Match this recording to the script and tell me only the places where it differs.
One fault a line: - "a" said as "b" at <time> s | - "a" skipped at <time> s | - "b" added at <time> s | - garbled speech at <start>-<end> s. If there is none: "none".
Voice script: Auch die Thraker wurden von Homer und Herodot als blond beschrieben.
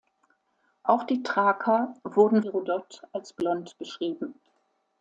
- "von Homer und" skipped at 2.4 s